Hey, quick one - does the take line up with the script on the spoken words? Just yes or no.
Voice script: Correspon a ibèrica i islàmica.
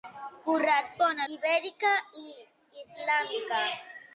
yes